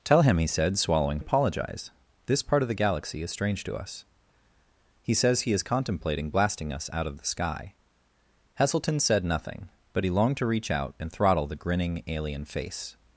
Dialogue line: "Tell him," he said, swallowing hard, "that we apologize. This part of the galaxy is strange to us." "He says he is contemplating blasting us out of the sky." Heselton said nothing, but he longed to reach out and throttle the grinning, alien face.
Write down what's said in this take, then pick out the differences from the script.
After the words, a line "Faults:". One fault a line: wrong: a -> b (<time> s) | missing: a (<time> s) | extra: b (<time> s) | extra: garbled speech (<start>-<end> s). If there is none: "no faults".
"Tell him," he said, swallowing apologize. This part of the galaxy is strange to us." "He says he is contemplating blasting us out of the sky." Heselton said nothing, but he longed to reach out and throttle the grinning, alien face.
Faults:
missing: hard that we (1.2 s)